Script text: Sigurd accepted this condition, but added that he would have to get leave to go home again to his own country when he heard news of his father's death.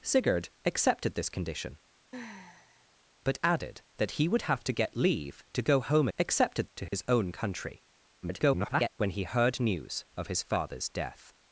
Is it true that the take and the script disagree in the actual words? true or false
true